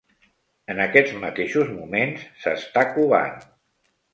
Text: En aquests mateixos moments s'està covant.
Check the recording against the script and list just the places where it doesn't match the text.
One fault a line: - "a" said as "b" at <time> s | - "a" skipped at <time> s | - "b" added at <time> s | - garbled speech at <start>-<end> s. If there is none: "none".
none